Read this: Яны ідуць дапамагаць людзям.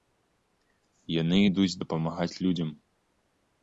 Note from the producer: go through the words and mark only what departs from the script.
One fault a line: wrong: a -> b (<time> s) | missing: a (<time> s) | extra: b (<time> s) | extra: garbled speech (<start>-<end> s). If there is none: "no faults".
no faults